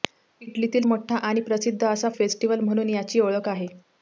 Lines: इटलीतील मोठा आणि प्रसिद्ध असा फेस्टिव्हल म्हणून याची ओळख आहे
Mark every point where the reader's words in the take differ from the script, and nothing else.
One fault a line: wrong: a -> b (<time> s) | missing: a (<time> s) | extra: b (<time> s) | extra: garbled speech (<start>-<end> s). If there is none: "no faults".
no faults